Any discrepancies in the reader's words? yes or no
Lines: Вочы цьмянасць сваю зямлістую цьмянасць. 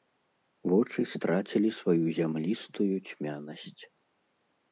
yes